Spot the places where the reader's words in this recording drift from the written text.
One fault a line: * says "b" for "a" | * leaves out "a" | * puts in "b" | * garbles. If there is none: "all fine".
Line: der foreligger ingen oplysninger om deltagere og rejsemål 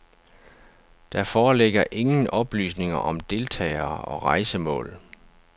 all fine